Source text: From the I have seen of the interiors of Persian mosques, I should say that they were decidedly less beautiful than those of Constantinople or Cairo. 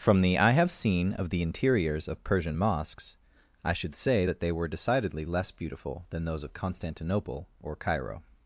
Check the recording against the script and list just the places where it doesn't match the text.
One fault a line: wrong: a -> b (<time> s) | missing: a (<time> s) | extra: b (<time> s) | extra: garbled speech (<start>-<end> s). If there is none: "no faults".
no faults